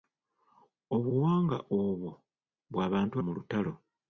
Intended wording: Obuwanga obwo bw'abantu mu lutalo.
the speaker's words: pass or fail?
pass